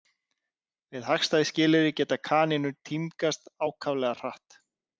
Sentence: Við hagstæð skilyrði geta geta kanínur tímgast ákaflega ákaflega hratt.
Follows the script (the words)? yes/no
no